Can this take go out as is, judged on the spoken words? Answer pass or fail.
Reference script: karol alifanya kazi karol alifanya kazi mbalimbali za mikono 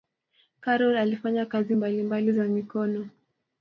fail